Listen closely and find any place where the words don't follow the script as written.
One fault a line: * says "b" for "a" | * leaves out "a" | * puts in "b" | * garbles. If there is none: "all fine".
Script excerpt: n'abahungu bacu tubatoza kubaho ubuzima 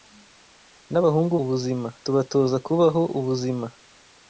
* says "ubuzima" for "bacu"